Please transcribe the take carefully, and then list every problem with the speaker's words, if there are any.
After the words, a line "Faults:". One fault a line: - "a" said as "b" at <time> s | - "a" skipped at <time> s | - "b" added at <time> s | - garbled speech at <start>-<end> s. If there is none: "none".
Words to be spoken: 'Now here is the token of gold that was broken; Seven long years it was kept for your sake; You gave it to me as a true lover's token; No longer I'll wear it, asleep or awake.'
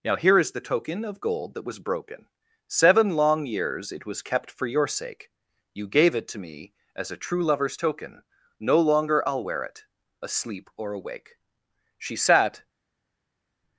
'Now here is the token of gold that was broken; Seven long years it was kept for your sake; You gave it to me as a true lover's token; No longer I'll wear it, asleep or awake.' She sat
Faults:
- "She sat" added at 12.0 s